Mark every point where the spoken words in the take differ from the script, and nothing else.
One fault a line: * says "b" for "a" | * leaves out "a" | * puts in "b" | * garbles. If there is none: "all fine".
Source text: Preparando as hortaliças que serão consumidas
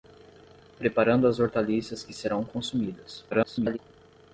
* garbles